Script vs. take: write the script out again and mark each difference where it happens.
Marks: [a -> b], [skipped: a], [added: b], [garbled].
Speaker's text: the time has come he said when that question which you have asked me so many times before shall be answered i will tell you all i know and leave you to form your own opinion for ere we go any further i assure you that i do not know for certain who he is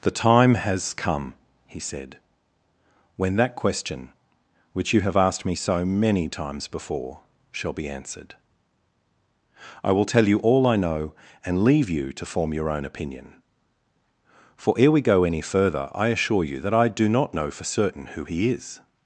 the time has come he said when that question which you have asked me so many times before shall be answered i will tell you all i know and leave you to form your own opinion for ere we go any further i assure you that i do not know for certain who he is